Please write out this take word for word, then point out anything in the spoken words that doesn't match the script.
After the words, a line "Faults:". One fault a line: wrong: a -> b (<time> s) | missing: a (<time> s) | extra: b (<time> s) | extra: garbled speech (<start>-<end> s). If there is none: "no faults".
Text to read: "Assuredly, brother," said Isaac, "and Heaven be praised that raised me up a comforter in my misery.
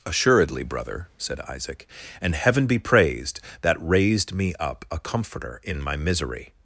"Assuredly, brother," said Isaac, "and Heaven be praised that raised me up a comforter in my misery.
Faults:
no faults